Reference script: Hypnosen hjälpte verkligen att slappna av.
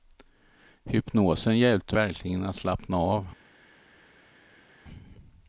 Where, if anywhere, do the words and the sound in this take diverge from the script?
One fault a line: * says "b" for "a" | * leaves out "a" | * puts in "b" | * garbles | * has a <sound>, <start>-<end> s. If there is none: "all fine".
all fine